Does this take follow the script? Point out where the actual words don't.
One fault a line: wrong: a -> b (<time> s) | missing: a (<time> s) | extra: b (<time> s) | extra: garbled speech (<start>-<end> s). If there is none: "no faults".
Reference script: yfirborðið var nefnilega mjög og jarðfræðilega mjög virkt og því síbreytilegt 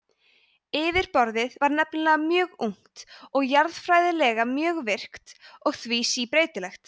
extra: ungt (2.7 s)